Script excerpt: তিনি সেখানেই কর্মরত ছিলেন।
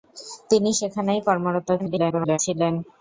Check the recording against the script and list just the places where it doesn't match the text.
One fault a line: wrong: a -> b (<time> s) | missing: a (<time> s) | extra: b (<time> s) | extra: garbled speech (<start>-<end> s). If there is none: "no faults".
extra: garbled speech (1.8-2.4 s)